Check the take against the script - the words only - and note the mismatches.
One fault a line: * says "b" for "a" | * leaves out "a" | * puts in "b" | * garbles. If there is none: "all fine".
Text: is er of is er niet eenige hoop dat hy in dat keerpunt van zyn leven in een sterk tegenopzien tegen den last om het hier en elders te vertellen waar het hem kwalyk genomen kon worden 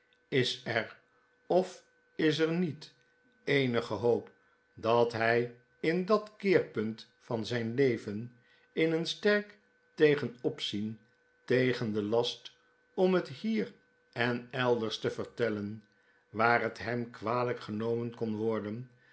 all fine